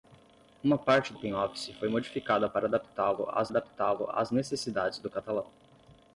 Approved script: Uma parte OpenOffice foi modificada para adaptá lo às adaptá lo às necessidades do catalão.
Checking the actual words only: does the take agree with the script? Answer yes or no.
yes